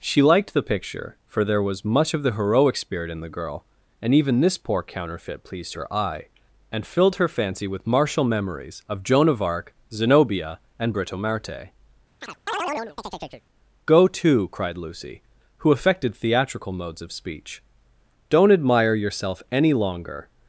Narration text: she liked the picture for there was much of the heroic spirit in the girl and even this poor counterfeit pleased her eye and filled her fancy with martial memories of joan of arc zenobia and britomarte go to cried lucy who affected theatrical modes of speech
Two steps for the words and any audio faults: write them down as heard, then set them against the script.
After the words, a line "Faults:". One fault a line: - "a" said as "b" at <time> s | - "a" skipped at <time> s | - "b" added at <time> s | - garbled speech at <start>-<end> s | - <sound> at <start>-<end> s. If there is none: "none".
she liked the picture for there was much of the heroic spirit in the girl and even this poor counterfeit pleased her eye and filled her fancy with martial memories of joan of arc zenobia and britomarte go to cried lucy who affected theatrical modes of speech don't admire yourself any longer
Faults:
- chirp at 12.2-13.5 s
- "don't admire yourself any longer" added at 18.3 s